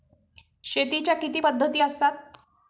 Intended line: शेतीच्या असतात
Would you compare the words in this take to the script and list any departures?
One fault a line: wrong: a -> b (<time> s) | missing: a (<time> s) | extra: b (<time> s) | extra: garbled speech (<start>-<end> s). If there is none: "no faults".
extra: किती पद्धती (1.1 s)